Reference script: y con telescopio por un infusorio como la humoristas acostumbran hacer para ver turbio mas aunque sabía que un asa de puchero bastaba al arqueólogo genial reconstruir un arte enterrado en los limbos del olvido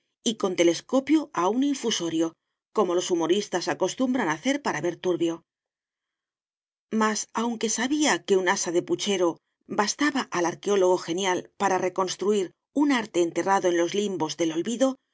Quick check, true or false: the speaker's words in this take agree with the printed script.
false